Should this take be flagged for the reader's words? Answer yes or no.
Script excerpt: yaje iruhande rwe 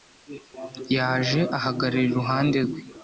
yes